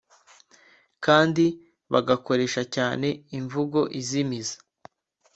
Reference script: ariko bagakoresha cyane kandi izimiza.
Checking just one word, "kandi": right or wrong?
wrong